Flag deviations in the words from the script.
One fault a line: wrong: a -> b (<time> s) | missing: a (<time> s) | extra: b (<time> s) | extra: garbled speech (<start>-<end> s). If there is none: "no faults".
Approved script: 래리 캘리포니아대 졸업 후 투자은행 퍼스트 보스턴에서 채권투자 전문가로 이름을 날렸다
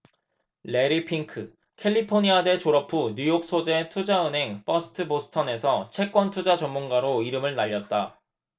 extra: 핑크 (1.1 s)
extra: 뉴욕 소재 (3.2 s)